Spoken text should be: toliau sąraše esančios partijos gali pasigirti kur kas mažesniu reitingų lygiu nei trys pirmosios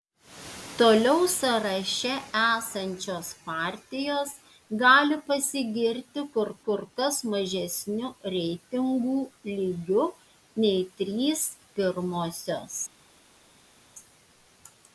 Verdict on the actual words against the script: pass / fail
fail